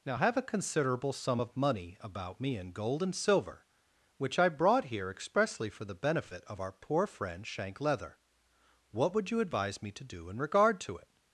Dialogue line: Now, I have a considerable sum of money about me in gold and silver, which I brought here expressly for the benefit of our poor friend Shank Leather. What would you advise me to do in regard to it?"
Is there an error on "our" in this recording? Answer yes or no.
no